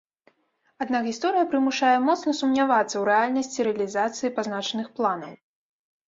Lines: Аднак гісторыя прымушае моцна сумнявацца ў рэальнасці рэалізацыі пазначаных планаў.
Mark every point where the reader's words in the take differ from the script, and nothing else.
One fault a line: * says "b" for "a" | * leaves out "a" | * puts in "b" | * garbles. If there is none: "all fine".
all fine